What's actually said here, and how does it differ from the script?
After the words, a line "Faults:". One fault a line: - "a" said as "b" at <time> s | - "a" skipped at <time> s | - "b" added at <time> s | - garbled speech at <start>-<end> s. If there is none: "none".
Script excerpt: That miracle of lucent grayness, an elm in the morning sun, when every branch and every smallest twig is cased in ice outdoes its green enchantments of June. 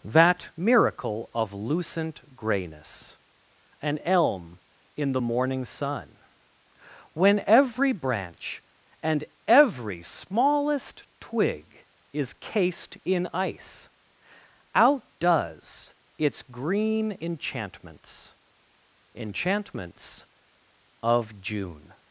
That miracle of lucent grayness, an elm in the morning sun, when every branch and every smallest twig is cased in ice outdoes its green enchantments enchantments of June.
Faults:
- "enchantments" added at 19.2 s